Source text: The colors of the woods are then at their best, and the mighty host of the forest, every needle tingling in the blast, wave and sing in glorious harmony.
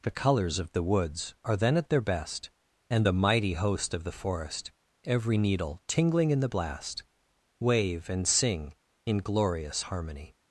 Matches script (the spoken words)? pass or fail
pass